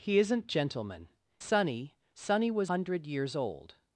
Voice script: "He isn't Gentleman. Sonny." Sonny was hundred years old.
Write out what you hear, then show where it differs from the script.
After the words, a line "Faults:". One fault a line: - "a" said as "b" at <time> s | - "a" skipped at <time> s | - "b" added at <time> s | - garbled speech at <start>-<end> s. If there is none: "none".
"He isn't Gentleman. Sonny." Sonny was hundred years old.
Faults:
none